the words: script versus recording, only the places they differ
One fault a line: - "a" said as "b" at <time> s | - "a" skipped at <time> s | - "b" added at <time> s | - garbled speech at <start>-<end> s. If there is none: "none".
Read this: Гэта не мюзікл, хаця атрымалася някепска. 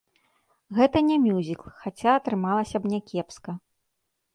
- "б" added at 2.9 s